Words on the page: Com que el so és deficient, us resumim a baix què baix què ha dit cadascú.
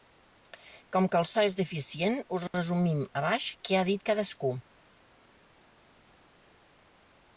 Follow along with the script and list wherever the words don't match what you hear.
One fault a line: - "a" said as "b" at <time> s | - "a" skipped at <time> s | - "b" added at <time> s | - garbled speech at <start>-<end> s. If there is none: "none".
- "baix què" skipped at 3.8 s